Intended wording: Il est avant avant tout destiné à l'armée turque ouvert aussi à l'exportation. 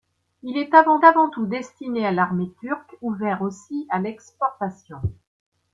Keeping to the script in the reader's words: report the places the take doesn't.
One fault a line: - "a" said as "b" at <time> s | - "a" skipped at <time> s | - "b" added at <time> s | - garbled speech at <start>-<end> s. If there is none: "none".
none